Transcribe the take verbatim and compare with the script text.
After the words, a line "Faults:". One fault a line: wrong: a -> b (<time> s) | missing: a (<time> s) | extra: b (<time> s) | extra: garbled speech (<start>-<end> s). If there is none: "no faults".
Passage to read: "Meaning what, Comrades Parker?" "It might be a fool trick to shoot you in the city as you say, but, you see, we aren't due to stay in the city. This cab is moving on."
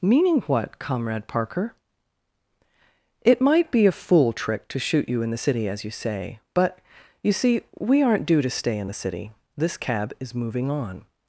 "Meaning what, Comrade Parker?" "It might be a fool trick to shoot you in the city as you say, but, you see, we aren't due to stay in the city. This cab is moving on."
Faults:
wrong: Comrades -> Comrade (0.8 s)